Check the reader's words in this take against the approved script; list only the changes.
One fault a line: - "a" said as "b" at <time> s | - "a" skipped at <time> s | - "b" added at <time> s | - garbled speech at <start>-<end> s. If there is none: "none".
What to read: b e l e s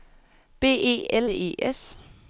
none